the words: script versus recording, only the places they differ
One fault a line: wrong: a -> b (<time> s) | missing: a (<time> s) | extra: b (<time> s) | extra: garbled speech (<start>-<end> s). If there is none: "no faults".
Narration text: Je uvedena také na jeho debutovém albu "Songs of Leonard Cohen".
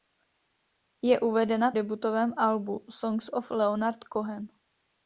missing: také na jeho (1.7 s)